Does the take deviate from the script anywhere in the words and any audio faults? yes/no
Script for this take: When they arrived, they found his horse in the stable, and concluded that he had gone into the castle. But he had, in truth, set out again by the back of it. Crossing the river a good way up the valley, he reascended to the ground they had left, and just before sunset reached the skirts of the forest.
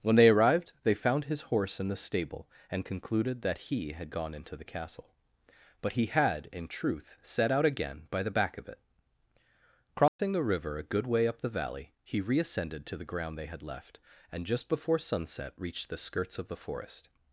yes